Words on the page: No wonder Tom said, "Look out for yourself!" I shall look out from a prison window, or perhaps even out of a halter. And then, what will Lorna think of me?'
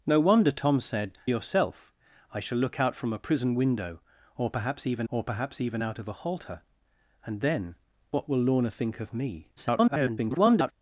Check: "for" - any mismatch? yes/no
yes